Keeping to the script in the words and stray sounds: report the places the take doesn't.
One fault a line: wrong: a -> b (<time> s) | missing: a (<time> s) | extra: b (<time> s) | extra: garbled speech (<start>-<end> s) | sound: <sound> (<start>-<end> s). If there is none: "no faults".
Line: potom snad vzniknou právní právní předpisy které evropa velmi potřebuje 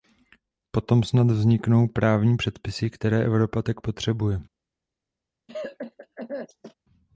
missing: právní (2.4 s)
wrong: velmi -> tak (3.6 s)
sound: cough (5.5-6.7 s)